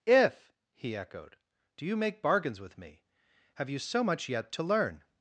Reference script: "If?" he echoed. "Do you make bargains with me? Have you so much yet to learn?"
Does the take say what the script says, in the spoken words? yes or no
yes